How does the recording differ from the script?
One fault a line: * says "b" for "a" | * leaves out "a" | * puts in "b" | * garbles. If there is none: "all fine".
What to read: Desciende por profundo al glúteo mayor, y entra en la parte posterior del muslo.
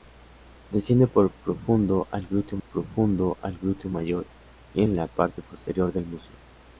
* puts in "profundo al glúteo"
* leaves out "entra"